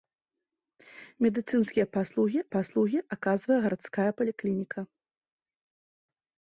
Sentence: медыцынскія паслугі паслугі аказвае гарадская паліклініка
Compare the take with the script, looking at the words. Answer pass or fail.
pass